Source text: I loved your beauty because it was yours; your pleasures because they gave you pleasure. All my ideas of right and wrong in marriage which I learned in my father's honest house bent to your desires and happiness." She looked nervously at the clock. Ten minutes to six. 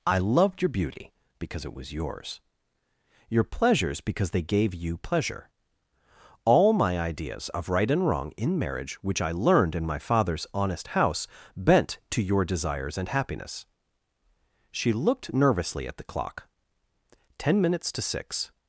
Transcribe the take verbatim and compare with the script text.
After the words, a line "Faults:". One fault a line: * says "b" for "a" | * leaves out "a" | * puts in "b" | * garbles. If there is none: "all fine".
I loved your beauty because it was yours; your pleasures because they gave you pleasure. All my ideas of right and wrong in marriage which I learned in my father's honest house bent to your desires and happiness." She looked nervously at the clock. Ten minutes to six.
Faults:
all fine